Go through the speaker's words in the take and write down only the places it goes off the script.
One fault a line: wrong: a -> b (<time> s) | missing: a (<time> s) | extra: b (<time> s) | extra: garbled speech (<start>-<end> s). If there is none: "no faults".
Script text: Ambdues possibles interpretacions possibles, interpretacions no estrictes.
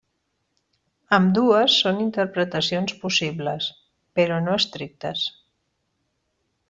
wrong: possibles -> són (1.8 s)
wrong: interpretacions -> però (4.2 s)